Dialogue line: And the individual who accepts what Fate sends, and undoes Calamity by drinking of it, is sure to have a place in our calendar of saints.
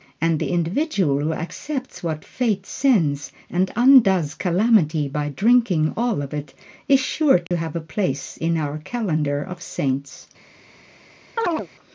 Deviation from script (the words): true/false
true